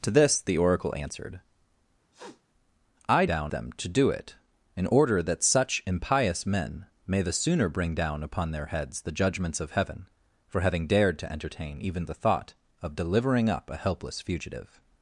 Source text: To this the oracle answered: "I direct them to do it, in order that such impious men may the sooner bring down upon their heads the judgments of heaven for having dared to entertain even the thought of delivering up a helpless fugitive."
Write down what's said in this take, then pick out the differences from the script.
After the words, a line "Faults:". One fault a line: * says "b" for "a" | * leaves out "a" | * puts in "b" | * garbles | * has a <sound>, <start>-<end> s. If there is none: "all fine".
To this the oracle answered: "I down them to do it, in order that such impious men may the sooner bring down upon their heads the judgments of heaven for having dared to entertain even the thought of delivering up a helpless fugitive."
Faults:
* has a sniff, 2.1-2.4 s
* says "down" for "direct"